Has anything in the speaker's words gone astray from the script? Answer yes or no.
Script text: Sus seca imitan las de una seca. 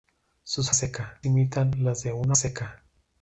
no